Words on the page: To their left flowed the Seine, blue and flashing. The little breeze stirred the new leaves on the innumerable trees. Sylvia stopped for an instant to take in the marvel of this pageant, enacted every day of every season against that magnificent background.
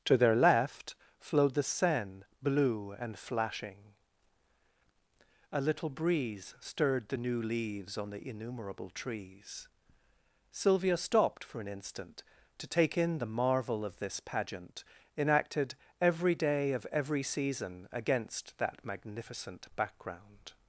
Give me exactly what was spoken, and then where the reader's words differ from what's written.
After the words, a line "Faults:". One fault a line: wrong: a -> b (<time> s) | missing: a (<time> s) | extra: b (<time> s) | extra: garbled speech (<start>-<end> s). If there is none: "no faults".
To their left flowed the Seine, blue and flashing. A little breeze stirred the new leaves on the innumerable trees. Sylvia stopped for an instant to take in the marvel of this pageant, enacted every day of every season against that magnificent background.
Faults:
wrong: The -> A (5.5 s)